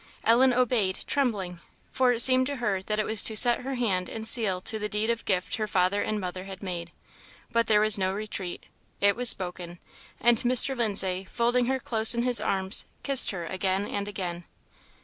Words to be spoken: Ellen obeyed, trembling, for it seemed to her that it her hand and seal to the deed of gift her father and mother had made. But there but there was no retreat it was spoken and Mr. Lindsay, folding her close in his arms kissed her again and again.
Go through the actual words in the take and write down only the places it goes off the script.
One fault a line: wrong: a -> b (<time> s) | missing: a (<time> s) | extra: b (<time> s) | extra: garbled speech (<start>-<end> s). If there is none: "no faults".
extra: was to set (3.0 s)
missing: but there (7.8 s)